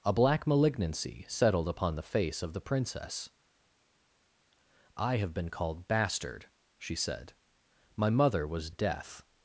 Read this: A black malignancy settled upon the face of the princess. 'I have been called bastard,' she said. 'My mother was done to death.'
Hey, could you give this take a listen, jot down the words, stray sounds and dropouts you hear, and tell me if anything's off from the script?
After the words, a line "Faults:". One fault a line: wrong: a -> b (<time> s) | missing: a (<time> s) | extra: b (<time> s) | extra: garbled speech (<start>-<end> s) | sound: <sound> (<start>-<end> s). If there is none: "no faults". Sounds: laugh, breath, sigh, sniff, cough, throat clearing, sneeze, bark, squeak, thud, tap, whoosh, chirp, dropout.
A black malignancy settled upon the face of the princess. 'I have been called bastard,' she said. 'My mother was death.'
Faults:
missing: done to (8.7 s)